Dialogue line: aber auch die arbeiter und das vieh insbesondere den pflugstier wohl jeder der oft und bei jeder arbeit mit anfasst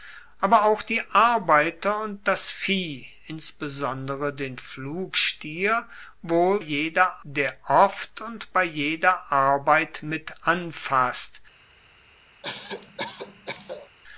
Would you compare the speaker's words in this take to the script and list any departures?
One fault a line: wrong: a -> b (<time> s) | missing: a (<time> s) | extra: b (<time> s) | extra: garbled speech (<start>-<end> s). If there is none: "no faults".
no faults